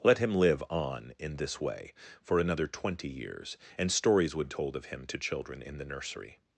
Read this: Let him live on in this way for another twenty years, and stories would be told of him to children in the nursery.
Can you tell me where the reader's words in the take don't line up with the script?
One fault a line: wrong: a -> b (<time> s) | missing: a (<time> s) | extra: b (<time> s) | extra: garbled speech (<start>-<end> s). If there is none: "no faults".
missing: be (4.5 s)